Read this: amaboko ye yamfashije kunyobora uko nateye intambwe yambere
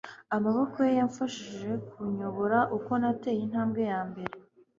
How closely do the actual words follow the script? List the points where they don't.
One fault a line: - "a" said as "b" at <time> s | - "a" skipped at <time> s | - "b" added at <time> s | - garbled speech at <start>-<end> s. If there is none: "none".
none